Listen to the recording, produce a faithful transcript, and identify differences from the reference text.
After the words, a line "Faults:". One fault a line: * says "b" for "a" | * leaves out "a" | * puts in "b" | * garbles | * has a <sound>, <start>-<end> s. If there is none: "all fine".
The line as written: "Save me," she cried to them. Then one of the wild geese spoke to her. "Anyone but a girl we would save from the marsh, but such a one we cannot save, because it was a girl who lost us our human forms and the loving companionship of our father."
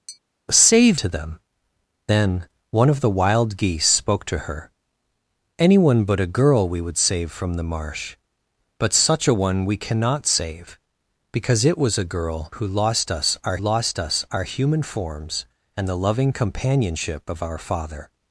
"Save to them. Then one of the wild geese spoke to her. "Anyone but a girl we would save from the marsh, but such a one we cannot save, because it was a girl who lost us our lost us our human forms and the loving companionship of our father."
Faults:
* has a tap, 0.1-0.2 s
* leaves out "me she cried"
* puts in "lost us our"